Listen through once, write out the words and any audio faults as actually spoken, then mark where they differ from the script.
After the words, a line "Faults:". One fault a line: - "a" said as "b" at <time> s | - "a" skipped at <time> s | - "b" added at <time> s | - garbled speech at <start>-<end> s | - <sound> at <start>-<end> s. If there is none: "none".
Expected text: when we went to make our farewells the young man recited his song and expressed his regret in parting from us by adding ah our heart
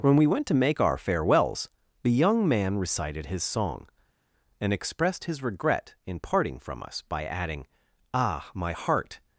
when we went to make our farewells the young man recited his song and expressed his regret in parting from us by adding ah my heart
Faults:
- "our" said as "my" at 8.5 s